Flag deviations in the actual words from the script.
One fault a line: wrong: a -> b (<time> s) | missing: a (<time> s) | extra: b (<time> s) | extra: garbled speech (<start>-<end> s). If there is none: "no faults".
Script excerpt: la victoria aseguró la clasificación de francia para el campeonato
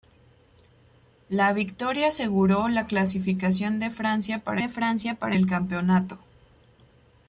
extra: de francia para (4.6 s)